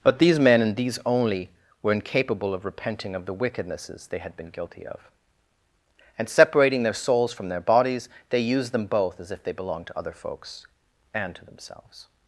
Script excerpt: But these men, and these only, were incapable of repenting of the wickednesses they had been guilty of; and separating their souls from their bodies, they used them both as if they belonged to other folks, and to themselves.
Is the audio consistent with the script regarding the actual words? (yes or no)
yes